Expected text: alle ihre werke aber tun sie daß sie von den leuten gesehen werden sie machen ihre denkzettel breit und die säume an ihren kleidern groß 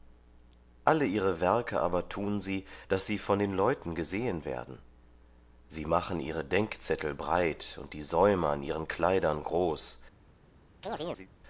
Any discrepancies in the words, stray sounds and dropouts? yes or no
yes